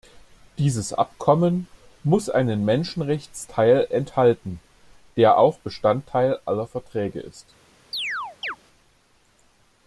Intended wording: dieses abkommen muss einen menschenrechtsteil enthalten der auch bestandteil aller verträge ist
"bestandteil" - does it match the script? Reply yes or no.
yes